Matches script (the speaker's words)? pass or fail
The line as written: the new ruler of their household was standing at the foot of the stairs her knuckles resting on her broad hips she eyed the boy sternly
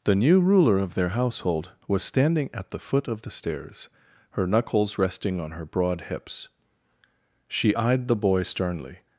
pass